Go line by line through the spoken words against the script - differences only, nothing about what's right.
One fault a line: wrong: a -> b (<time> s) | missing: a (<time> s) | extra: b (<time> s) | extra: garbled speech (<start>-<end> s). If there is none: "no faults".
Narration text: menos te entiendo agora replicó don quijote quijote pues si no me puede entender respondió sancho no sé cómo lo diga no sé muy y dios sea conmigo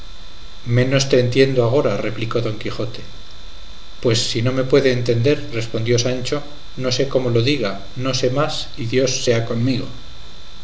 missing: quijote (3.0 s)
wrong: muy -> más (8.3 s)